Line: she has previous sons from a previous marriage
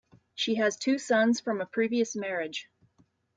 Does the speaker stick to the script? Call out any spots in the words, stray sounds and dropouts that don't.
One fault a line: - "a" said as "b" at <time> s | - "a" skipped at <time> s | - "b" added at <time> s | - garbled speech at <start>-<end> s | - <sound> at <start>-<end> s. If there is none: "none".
- "previous" said as "two" at 0.8 s